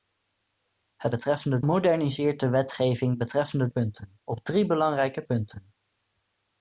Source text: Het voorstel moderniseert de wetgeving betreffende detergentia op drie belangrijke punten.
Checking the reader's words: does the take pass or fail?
fail